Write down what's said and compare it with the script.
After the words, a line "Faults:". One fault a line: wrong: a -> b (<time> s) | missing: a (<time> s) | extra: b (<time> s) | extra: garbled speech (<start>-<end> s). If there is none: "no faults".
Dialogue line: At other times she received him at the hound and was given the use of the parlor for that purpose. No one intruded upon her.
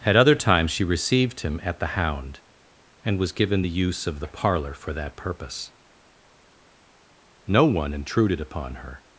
At other times she received him at the hound and was given the use of the parlor for that purpose. No one intruded upon her.
Faults:
no faults